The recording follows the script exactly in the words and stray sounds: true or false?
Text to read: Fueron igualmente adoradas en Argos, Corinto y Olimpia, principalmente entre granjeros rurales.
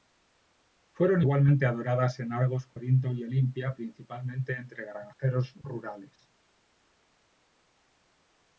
true